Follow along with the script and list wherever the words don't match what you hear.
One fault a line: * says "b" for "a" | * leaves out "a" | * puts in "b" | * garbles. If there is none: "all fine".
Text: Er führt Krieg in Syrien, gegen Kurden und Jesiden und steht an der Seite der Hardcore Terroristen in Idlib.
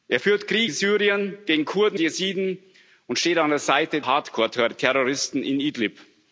* leaves out "in"
* leaves out "und"
* leaves out "der"